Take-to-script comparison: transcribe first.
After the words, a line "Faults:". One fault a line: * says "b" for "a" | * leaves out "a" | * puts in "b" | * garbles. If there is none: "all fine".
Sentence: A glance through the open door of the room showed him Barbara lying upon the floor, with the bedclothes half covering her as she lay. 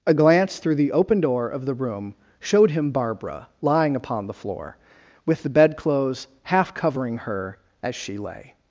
A glance through the open door of the room showed him Barbara lying upon the floor, with the bedclothes half covering her as she lay.
Faults:
all fine